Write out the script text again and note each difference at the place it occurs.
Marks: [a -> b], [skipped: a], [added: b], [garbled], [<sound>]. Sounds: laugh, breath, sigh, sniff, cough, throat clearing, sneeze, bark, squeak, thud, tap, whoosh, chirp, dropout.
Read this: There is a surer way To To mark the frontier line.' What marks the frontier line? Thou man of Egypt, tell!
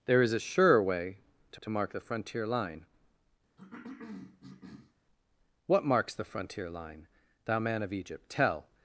There is a surer way To To mark the frontier line.' [cough] What marks the frontier line? Thou man of Egypt, tell!